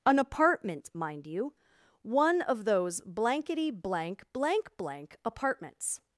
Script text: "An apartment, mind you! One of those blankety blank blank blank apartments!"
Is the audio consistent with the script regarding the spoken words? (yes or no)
yes